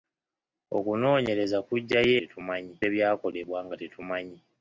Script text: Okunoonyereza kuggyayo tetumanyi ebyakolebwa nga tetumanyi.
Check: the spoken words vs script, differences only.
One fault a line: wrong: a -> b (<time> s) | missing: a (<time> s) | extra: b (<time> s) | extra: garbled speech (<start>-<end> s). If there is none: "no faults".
no faults